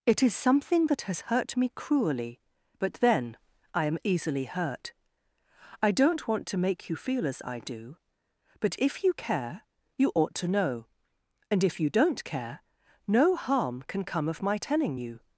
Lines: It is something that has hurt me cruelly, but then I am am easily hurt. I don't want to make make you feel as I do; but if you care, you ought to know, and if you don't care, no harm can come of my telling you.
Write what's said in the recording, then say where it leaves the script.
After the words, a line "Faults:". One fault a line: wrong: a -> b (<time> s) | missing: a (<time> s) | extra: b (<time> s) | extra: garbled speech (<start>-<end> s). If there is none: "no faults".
It is something that has hurt me cruelly, but then I am easily hurt. I don't want to make you feel as I do; but if you care, you ought to know, and if you don't care, no harm can come of my telling you.
Faults:
missing: am (4.0 s)
missing: make (6.9 s)